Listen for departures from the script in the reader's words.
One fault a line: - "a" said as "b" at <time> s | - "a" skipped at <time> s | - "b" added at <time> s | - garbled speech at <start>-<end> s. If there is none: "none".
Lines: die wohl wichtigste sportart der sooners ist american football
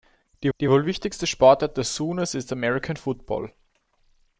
- "die" added at 0.6 s